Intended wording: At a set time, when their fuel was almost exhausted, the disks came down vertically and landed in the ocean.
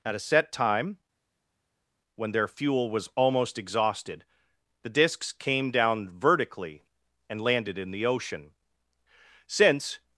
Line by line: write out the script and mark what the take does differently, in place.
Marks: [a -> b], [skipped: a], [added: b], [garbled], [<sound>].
At a set time, when their fuel was almost exhausted, the disks came down vertically and landed in the ocean. [added: Since]